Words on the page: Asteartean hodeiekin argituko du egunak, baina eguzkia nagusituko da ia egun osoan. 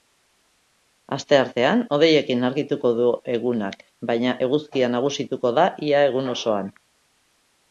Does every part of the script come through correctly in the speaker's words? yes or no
yes